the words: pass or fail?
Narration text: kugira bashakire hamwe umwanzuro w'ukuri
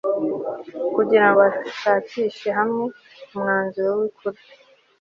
pass